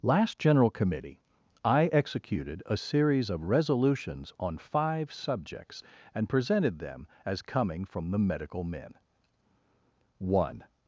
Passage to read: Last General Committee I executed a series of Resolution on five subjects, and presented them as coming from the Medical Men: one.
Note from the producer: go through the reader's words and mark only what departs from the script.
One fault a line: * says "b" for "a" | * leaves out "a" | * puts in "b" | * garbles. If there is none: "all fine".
* says "Resolutions" for "Resolution"